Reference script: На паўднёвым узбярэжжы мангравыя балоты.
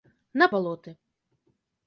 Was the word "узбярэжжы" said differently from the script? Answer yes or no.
yes